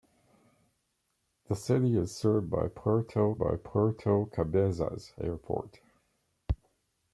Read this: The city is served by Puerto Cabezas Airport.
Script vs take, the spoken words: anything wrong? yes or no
yes